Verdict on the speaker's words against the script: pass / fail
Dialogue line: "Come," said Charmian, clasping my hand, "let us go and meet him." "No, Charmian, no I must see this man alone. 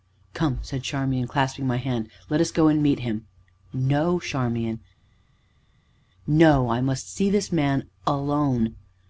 pass